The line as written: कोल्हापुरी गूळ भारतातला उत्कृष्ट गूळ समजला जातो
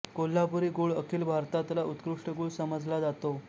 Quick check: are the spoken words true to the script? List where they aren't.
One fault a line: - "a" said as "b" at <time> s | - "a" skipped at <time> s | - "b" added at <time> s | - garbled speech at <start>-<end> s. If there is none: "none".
- "अखिल" added at 0.9 s